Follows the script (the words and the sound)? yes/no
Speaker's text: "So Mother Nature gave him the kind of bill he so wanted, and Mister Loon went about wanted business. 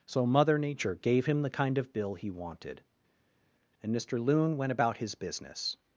no